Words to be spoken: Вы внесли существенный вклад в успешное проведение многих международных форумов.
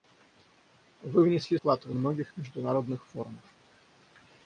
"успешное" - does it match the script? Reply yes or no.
no